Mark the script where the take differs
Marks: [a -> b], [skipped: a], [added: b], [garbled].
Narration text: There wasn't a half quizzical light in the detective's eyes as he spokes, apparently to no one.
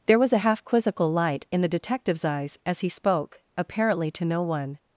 There [wasn't -> was] a half quizzical light in the detective's eyes as he [spokes, -> spoke] apparently to no one.